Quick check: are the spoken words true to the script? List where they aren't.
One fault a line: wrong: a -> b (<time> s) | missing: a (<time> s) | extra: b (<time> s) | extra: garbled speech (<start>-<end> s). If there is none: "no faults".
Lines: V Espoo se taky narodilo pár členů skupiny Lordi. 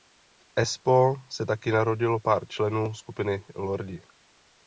no faults